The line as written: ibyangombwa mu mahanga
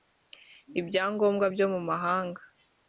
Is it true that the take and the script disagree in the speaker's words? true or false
true